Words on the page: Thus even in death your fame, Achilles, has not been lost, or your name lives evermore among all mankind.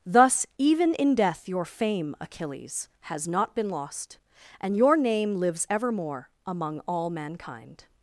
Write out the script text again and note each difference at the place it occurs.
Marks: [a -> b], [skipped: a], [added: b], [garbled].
Thus even in death your fame, Achilles, has not been lost, [or -> and] your name lives evermore among all mankind.